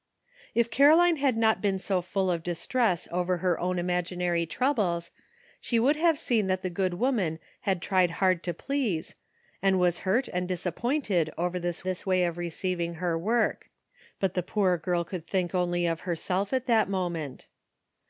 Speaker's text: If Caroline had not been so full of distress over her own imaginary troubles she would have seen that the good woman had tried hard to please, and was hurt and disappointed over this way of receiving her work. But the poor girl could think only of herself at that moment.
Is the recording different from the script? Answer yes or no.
yes